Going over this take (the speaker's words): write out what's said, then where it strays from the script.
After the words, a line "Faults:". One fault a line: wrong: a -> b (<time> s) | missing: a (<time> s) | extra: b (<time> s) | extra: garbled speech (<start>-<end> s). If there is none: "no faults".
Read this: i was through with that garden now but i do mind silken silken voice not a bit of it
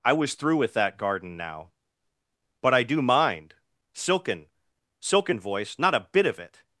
i was through with that garden now but i do mind silken silken voice not a bit of it
Faults:
no faults